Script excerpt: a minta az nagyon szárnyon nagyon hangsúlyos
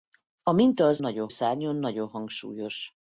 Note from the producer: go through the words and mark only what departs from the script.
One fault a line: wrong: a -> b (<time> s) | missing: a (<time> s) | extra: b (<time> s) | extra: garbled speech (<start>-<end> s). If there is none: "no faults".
no faults